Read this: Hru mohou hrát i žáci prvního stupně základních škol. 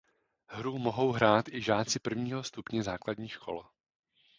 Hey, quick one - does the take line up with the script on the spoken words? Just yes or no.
yes